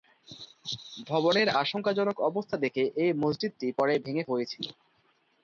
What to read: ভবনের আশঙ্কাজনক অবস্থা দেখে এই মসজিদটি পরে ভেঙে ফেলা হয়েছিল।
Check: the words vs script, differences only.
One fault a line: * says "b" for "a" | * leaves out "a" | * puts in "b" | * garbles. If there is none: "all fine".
* leaves out "ফেলা"